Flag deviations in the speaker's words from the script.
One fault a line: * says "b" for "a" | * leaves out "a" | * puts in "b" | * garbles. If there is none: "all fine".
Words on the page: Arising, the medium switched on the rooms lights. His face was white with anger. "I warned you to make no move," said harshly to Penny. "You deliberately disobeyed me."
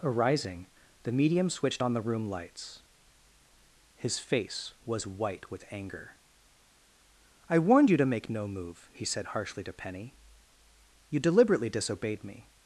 * says "room" for "rooms"
* puts in "he"